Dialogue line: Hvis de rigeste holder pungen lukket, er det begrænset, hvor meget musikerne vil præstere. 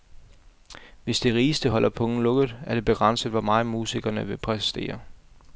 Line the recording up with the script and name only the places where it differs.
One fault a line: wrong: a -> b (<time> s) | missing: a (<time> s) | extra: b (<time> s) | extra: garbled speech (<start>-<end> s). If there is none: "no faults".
no faults